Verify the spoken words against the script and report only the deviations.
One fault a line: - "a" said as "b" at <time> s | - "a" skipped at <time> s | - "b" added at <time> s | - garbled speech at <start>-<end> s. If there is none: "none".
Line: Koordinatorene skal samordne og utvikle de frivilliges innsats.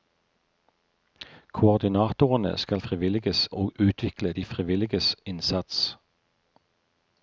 - "samordne" said as "frivilliges" at 2.8 s